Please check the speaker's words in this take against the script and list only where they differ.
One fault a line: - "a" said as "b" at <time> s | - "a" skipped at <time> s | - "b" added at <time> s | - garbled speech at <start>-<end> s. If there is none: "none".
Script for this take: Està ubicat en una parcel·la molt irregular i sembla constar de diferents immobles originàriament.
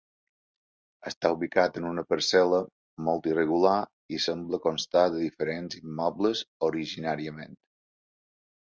none